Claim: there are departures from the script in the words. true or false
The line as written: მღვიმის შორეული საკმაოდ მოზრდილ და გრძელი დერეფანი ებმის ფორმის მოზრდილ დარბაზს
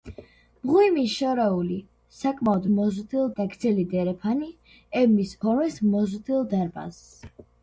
false